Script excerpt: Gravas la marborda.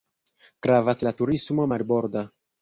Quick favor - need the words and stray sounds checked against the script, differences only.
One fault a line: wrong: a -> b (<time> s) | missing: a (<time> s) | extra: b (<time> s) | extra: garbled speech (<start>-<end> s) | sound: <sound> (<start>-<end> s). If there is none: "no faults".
extra: turismo (1.2 s)